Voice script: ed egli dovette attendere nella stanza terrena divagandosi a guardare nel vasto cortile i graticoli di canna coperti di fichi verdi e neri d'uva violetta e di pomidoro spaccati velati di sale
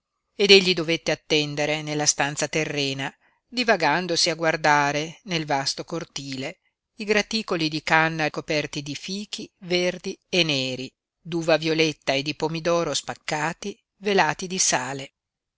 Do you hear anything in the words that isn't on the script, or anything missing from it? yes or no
no